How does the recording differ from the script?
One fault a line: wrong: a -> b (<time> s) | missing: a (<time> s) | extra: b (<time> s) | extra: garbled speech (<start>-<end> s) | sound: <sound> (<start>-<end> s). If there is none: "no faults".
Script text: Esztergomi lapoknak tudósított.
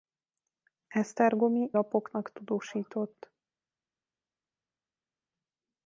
no faults